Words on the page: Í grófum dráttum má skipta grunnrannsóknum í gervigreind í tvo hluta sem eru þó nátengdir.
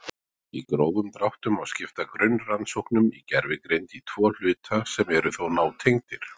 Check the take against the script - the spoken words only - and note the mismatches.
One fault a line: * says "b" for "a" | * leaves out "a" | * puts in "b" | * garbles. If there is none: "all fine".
all fine